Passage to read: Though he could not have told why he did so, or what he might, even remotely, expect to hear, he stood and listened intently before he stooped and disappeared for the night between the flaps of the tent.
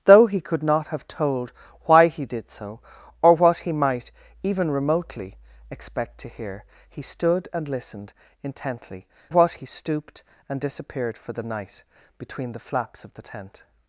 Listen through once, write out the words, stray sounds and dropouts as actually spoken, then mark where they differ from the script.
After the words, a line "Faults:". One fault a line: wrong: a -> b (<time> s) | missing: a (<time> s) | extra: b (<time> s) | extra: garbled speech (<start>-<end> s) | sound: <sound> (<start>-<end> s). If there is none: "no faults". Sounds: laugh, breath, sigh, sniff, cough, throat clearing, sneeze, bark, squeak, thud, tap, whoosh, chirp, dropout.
Though he could not have told why he did so, or what he might, even remotely, expect to hear, he stood and listened intently what he stooped and disappeared for the night between the flaps of the tent.
Faults:
wrong: before -> what (9.3 s)